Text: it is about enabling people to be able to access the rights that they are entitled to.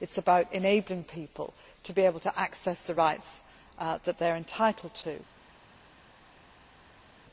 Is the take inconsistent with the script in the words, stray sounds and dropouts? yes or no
no